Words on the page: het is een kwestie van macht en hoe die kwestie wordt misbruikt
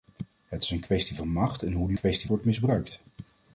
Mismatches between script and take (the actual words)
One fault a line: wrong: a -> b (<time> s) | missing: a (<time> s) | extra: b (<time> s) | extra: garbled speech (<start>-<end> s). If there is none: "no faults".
no faults